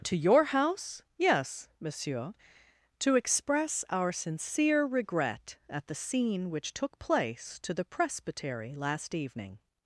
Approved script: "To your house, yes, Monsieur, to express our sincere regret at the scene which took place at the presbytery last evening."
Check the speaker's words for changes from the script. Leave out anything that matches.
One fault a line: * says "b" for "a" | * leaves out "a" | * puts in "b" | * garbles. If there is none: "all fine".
* says "to" for "at"